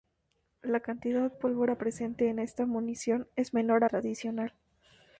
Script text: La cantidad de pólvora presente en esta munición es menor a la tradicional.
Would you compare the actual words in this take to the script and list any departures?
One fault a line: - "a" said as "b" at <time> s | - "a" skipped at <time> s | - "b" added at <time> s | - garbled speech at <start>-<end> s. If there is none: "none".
- "de" skipped at 1.3 s
- "la" skipped at 3.9 s